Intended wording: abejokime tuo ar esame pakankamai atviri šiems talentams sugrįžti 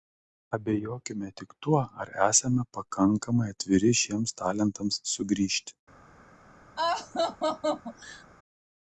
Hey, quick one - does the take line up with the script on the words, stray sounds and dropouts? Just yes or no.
no